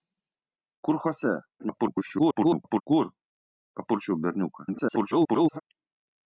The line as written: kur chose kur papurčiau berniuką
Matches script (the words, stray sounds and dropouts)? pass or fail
fail